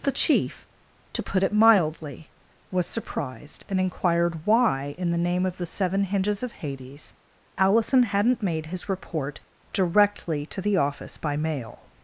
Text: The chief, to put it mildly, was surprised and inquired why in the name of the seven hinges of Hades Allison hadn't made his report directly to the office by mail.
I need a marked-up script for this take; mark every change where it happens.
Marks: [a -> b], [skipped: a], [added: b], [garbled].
The chief, to put it mildly, was surprised and inquired why in the name of the seven hinges of Hades Allison hadn't made his report directly to the office by mail.